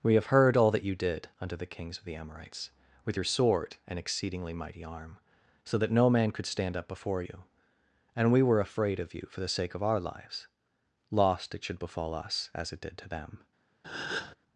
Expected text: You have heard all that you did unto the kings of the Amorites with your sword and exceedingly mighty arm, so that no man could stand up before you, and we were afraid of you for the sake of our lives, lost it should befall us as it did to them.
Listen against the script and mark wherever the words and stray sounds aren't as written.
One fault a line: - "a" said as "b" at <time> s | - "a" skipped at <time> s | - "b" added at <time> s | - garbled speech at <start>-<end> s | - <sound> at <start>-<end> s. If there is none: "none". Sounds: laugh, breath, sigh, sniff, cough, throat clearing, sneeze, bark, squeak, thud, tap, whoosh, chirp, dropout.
- "You" said as "We" at 0.0 s
- breath at 13.8-14.4 s